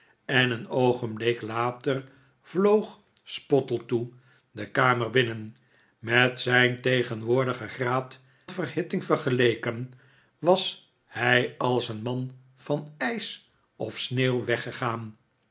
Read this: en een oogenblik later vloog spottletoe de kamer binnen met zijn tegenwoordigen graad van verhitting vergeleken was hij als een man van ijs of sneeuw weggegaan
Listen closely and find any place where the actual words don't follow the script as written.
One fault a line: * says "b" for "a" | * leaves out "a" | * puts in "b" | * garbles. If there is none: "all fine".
* leaves out "van"